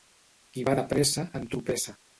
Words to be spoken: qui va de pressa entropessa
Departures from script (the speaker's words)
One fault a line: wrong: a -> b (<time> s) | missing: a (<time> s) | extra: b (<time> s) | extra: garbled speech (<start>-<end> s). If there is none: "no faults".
no faults